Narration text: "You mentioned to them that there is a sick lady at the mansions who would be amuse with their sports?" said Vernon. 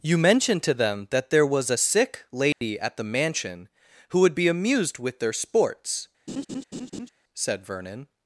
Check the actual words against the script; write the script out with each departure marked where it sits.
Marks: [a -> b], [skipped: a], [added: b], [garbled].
"You mentioned to them that there [is -> was] a sick lady at the [mansions -> mansion] who would be [amuse -> amused] with their sports?" said Vernon.